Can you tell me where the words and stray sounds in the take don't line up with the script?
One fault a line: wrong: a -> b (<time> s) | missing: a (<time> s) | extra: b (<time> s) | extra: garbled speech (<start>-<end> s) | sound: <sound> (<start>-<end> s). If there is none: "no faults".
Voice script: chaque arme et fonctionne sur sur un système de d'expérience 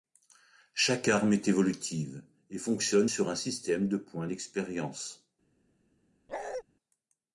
extra: est évolutive (1.3 s)
missing: sur (3.3 s)
extra: points (4.0 s)
sound: bark (6.3-6.6 s)